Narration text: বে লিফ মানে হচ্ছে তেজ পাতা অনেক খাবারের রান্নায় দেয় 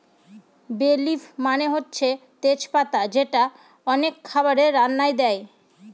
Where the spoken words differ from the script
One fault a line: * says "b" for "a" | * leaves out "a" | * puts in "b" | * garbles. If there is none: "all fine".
* puts in "যেটা"